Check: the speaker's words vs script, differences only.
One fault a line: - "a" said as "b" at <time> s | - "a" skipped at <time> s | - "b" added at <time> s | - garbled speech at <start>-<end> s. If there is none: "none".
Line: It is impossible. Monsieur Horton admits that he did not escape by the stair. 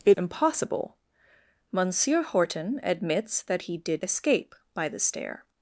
- "is" skipped at 0.2 s
- "not" skipped at 4.0 s